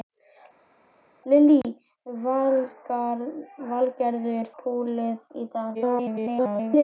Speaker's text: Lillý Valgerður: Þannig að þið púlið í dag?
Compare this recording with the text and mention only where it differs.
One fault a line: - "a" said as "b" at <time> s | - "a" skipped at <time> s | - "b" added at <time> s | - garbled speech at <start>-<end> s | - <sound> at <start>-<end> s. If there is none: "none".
- "Þannig að þið" skipped at 3.3 s
- garbled speech at 5.7-6.8 s